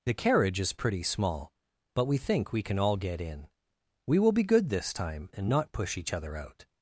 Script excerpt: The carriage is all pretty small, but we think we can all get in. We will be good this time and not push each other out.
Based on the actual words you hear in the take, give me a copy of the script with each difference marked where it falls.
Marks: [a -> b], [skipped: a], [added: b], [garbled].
The carriage is [skipped: all] pretty small, but we think we can all get in. We will be good this time and not push each other out.